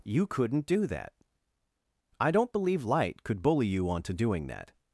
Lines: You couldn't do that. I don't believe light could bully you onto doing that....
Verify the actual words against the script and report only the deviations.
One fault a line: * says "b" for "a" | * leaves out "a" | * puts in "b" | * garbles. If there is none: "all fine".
all fine